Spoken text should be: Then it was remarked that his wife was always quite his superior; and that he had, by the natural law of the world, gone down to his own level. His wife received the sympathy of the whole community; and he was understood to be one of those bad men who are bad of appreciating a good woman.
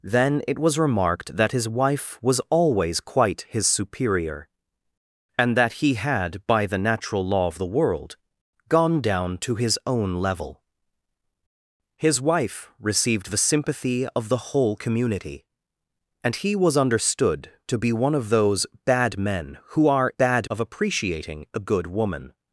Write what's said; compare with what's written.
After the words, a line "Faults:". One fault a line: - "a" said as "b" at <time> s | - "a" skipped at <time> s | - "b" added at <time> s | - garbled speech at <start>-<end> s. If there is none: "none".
Then it was remarked that his wife was always quite his superior; and that he had, by the natural law of the world, gone down to his own level. His wife received the sympathy of the whole community; and he was understood to be one of those bad men who are bad of appreciating a good woman.
Faults:
none